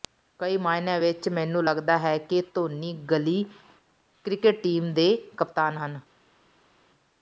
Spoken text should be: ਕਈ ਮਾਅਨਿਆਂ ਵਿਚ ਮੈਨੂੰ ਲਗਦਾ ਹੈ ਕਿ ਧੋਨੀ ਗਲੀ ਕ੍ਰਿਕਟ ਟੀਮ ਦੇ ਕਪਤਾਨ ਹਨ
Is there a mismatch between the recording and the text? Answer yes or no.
no